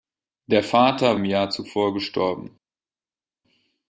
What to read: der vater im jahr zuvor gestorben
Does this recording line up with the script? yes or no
yes